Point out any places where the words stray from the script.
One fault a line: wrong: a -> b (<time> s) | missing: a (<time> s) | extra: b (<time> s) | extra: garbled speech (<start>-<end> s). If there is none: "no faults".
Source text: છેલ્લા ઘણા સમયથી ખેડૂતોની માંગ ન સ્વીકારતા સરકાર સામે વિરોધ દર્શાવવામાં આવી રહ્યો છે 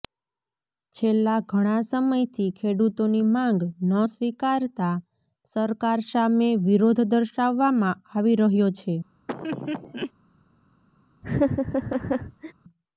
no faults